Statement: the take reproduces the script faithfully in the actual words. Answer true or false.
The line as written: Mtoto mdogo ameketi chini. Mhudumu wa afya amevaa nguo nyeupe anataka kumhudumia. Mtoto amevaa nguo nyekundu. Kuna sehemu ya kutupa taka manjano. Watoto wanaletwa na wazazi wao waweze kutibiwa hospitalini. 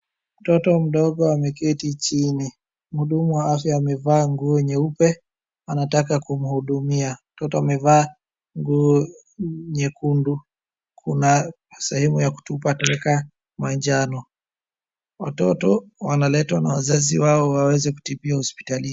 true